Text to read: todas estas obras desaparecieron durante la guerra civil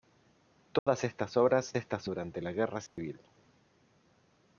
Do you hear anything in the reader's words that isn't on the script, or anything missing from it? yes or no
yes